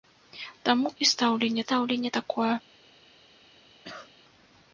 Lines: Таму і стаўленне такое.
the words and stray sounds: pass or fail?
fail